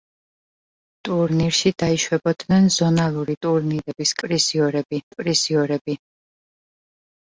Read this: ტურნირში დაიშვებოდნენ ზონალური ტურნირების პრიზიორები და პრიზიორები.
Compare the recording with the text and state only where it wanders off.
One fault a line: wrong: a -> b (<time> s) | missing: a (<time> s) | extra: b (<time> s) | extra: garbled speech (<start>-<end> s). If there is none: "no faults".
no faults